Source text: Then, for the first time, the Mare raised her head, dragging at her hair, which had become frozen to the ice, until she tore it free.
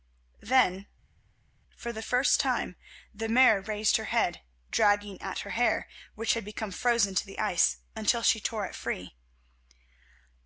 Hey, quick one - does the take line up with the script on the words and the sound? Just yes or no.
yes